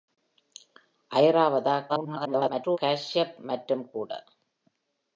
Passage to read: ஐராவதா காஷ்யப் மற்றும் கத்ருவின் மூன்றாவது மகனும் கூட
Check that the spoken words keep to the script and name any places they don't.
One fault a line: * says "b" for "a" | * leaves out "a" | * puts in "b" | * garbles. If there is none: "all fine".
* garbles
* leaves out "கத்ருவின் மூன்றாவது மகனும்"